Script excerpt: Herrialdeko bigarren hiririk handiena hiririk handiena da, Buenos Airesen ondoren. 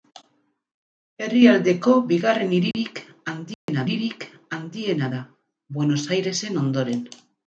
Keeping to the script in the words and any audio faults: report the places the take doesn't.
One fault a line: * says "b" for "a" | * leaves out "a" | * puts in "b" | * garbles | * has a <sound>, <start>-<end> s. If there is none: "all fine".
* has a dropout, 2.7-2.7 s
* has a dropout, 3.5-3.7 s